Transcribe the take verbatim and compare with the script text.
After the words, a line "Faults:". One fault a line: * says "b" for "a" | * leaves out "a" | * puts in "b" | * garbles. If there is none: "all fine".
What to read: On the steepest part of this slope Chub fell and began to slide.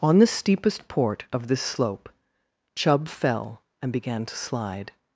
On the steepest port of this slope Chub fell and began to slide.
Faults:
* says "port" for "part"